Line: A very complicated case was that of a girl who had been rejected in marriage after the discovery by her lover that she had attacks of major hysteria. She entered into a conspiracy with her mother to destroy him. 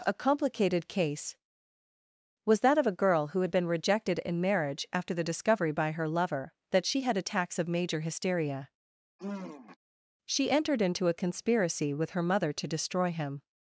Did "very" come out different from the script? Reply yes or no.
yes